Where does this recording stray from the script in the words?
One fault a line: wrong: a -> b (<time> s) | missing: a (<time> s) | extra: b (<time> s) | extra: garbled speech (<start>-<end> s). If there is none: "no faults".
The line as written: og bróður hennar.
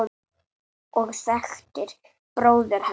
extra: þekktir (1.2 s)